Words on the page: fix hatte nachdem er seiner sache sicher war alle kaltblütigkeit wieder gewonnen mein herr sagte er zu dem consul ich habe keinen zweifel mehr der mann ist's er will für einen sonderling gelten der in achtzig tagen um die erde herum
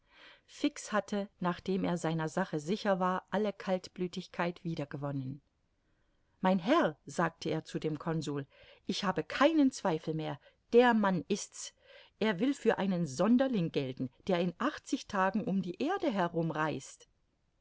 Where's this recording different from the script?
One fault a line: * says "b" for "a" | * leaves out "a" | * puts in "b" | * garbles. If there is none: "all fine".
all fine